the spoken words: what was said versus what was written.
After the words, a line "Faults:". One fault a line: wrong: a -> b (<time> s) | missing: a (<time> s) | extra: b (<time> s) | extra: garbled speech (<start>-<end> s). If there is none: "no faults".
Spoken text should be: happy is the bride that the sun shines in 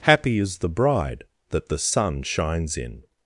happy is the bride that the sun shines in
Faults:
no faults